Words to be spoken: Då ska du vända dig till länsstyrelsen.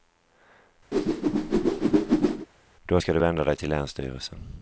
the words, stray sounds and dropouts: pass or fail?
fail